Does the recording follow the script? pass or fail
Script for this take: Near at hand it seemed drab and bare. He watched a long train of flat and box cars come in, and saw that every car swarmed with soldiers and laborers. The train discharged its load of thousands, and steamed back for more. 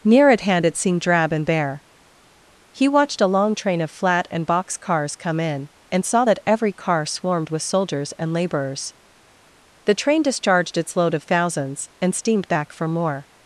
pass